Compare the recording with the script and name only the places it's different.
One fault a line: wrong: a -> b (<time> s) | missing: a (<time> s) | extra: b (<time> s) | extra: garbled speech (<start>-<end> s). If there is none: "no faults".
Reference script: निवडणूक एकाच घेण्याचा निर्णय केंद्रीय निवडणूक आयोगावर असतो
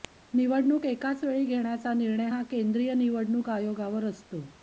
extra: वेळी (1.2 s)
extra: हा (2.3 s)